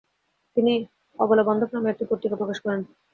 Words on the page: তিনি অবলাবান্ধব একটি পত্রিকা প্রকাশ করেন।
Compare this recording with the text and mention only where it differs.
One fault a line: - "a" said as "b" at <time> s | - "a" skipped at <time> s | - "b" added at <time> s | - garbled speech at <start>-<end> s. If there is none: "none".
- "নামে" added at 1.7 s